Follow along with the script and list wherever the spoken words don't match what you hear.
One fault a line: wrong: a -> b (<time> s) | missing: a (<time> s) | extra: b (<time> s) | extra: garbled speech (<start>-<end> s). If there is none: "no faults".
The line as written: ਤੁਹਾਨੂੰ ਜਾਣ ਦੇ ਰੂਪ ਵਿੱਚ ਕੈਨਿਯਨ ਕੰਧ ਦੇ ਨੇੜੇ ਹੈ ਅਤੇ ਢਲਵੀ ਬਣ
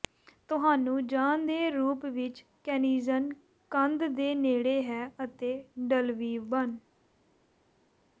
no faults